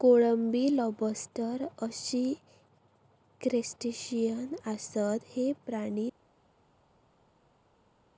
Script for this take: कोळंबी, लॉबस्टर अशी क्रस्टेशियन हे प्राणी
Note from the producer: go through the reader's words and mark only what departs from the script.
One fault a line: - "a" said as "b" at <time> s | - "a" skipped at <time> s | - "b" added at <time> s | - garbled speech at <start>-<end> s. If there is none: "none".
- "आसत" added at 4.6 s